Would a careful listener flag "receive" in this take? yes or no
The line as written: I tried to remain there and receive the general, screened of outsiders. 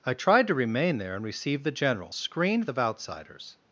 no